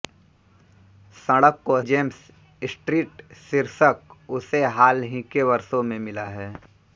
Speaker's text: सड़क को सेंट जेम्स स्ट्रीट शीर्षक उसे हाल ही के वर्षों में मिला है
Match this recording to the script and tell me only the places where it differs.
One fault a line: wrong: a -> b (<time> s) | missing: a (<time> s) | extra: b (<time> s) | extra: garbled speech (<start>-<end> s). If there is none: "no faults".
missing: सेंट (1.8 s)